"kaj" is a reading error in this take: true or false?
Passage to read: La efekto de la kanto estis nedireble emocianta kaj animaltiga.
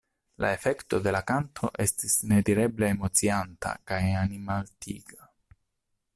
false